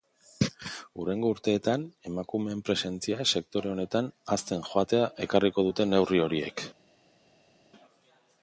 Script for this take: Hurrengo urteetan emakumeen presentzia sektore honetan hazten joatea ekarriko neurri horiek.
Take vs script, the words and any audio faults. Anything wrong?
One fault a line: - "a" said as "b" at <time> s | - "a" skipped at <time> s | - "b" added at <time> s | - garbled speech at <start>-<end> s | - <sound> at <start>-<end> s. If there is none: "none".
- "dute" added at 5.7 s